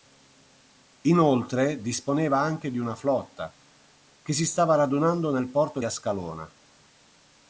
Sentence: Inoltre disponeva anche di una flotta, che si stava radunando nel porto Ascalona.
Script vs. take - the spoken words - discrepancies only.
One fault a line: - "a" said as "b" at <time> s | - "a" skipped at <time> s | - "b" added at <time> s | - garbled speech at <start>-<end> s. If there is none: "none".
none